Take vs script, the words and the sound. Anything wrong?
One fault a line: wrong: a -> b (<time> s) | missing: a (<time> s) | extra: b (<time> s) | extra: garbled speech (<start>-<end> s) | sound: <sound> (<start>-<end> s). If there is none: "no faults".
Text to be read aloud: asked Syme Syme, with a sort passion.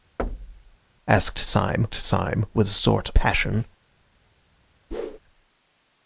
sound: thud (0.2-0.8 s)
sound: whoosh (4.9-5.2 s)